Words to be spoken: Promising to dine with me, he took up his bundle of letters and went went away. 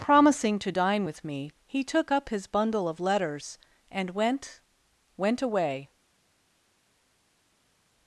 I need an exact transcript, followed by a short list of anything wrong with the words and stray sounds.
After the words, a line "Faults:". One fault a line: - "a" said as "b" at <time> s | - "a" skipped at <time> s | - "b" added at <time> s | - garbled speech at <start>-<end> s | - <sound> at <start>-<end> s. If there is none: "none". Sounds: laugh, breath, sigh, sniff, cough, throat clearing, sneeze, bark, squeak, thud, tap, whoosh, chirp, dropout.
Promising to dine with me, he took up his bundle of letters and went went away.
Faults:
none